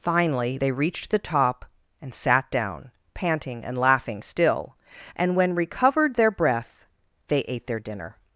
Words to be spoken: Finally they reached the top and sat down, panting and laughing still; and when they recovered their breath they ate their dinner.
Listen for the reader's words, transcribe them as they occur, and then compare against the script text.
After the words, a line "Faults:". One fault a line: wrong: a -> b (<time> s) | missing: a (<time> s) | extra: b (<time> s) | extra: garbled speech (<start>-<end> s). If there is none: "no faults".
Finally they reached the top and sat down, panting and laughing still; and when recovered their breath they ate their dinner.
Faults:
missing: they (5.5 s)